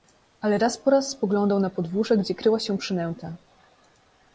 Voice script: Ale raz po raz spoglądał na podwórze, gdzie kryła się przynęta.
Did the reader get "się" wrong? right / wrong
right